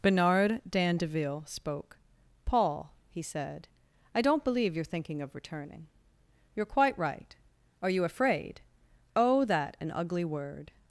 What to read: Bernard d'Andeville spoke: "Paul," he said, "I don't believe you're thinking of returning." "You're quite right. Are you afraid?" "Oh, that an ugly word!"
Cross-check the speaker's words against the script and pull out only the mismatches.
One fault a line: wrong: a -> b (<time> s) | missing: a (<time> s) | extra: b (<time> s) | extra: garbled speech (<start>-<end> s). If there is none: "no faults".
no faults